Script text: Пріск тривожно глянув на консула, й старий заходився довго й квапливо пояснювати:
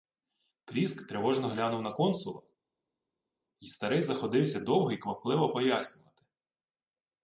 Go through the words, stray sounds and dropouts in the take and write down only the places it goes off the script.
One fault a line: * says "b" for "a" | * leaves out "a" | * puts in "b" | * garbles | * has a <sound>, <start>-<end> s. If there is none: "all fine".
all fine